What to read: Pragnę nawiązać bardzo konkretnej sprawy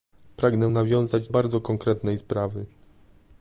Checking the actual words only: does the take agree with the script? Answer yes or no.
yes